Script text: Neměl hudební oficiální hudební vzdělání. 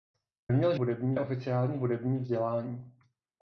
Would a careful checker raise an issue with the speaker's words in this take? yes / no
no